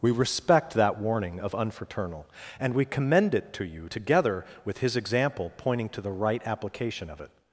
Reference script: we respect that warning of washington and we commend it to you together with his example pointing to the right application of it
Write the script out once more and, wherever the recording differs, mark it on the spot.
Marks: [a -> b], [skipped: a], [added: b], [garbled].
we respect that warning of [washington -> unfraternal] and we commend it to you together with his example pointing to the right application of it